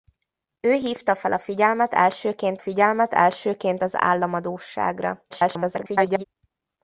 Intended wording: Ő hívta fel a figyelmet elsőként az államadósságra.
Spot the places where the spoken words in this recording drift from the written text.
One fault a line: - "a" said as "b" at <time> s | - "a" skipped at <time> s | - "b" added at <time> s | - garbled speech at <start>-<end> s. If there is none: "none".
- "figyelmet elsőként" added at 2.6 s
- garbled speech at 5.3-6.2 s